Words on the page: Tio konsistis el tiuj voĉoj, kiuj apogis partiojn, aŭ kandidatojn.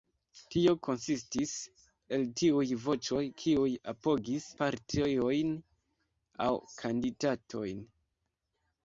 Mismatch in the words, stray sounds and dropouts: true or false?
false